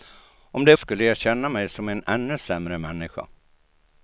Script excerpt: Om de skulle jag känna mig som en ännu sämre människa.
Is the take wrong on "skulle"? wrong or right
right